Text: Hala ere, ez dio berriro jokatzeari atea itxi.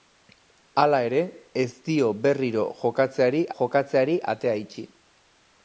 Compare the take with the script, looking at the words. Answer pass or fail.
fail